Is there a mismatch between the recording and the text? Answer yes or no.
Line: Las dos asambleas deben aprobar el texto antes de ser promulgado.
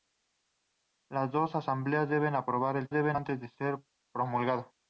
yes